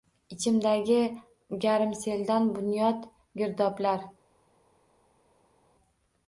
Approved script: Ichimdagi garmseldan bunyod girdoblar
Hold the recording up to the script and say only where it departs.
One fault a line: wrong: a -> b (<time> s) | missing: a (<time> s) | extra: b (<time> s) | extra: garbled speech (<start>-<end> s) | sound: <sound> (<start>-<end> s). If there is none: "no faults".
no faults